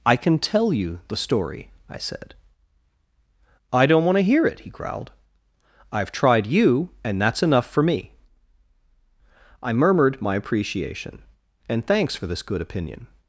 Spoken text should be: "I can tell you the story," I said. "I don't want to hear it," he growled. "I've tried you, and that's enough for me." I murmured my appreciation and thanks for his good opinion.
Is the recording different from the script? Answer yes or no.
yes